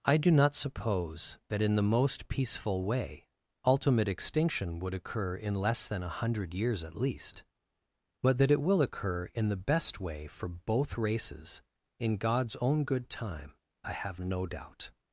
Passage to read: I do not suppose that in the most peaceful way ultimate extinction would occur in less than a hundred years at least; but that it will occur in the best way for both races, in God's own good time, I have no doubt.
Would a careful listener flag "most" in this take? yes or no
no